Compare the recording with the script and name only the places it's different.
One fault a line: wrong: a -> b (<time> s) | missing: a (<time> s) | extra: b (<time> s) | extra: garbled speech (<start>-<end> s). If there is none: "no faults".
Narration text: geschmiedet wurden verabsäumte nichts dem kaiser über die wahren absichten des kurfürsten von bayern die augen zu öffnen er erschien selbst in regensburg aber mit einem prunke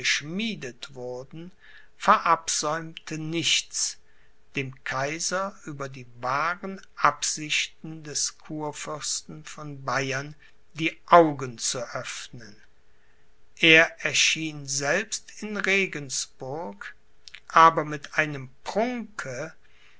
no faults